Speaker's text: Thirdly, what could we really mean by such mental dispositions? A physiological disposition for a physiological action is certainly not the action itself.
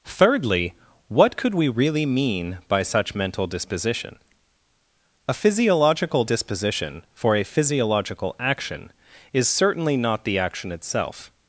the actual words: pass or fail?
fail